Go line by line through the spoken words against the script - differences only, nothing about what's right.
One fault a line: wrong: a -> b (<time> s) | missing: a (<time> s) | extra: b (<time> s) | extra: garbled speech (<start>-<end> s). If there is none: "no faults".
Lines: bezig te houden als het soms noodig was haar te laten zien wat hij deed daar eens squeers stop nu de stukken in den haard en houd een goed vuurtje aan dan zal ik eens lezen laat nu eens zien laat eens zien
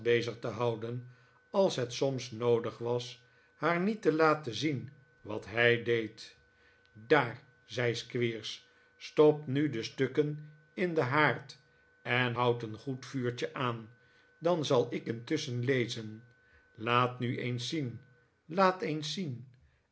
extra: niet (3.8 s)
wrong: eens -> zei (7.7 s)
wrong: eens -> intusschen (15.1 s)